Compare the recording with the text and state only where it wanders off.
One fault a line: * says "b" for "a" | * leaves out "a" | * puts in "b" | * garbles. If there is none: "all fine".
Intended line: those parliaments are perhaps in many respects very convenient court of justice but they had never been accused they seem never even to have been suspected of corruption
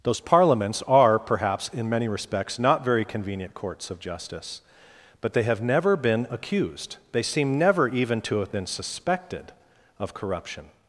* puts in "not"
* says "courts" for "court"
* says "have" for "had"